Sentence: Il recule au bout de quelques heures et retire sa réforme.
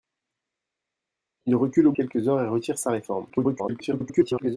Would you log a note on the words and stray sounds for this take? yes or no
yes